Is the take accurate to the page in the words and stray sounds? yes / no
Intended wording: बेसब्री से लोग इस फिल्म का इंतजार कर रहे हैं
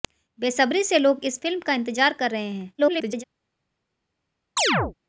no